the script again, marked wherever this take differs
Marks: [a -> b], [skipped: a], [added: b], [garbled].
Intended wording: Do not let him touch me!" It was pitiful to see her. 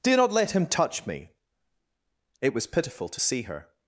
Do not let him touch me!" It was pitiful to see her.